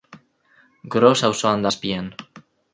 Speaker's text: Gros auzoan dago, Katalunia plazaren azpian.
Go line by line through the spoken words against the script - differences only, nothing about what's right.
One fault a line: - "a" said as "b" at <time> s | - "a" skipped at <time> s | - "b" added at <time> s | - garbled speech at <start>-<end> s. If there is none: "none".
- "dago Katalunia plazaren" skipped at 1.7 s